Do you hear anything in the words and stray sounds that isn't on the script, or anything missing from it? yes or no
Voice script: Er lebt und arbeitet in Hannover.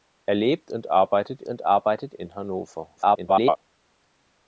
yes